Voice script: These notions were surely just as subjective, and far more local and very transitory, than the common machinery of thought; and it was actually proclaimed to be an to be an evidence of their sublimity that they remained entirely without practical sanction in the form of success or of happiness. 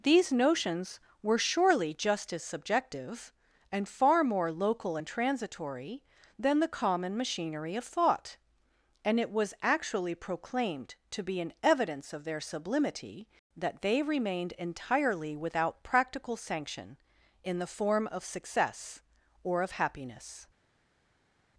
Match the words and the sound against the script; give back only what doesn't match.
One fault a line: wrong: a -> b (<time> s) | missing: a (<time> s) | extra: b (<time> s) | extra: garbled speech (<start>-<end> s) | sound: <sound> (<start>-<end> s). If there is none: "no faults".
missing: very (5.1 s)
missing: to be an (11.5 s)